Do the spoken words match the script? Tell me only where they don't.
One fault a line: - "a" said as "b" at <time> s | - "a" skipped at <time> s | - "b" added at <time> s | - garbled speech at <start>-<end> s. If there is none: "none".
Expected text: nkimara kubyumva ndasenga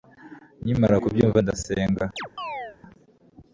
none